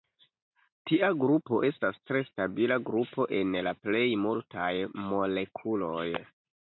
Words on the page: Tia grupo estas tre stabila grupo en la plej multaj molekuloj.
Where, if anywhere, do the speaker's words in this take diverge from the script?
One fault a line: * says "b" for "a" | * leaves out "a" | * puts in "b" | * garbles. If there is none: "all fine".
all fine